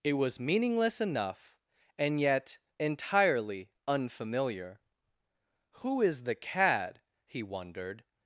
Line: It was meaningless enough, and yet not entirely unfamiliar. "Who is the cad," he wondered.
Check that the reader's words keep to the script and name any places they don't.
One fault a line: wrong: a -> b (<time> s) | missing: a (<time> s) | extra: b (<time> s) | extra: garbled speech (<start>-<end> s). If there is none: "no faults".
missing: not (2.6 s)